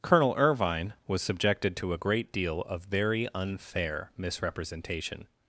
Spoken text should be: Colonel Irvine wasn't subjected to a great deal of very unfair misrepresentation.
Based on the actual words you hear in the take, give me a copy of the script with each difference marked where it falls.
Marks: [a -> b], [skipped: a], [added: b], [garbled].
Colonel Irvine [wasn't -> was] subjected to a great deal of very unfair misrepresentation.